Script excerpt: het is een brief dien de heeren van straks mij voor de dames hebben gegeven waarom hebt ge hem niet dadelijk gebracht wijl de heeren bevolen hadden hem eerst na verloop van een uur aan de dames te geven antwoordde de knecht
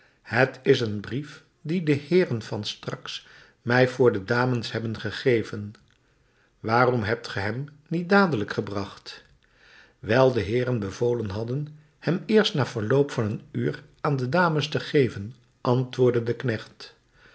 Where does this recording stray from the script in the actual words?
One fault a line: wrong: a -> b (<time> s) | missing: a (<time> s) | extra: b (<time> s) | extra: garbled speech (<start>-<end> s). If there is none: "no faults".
no faults